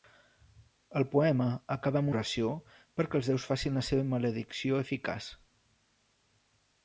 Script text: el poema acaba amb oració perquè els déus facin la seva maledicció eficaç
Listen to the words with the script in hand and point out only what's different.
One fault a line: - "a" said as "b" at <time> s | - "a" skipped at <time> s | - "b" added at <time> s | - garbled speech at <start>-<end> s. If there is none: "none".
none